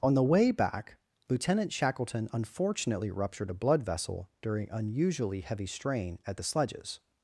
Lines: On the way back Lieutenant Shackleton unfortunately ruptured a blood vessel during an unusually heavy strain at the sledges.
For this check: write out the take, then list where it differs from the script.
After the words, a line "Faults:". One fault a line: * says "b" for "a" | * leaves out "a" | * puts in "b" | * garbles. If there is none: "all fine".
On the way back Lieutenant Shackleton unfortunately ruptured a blood vessel during unusually heavy strain at the sledges.
Faults:
* leaves out "an"